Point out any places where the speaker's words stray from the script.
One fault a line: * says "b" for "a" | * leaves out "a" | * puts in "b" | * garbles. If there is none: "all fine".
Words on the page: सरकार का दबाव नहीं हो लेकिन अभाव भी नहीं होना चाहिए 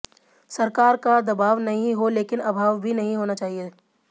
all fine